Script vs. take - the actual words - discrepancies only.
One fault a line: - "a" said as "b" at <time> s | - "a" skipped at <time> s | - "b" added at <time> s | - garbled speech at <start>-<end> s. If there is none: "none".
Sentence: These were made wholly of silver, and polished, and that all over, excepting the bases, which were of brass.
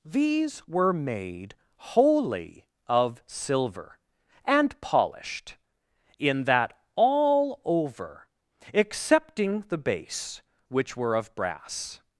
- "and" said as "in" at 6.2 s
- "bases" said as "base" at 9.8 s